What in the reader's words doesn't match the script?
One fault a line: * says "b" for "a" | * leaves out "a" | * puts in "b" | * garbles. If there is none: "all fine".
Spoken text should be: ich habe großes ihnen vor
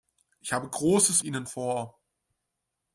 all fine